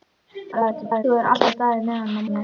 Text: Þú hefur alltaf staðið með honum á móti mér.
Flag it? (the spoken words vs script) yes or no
yes